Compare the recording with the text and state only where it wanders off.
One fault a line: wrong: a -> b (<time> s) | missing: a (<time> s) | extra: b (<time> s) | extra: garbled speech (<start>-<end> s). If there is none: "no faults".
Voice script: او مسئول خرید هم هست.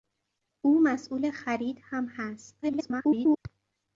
extra: garbled speech (2.6-3.4 s)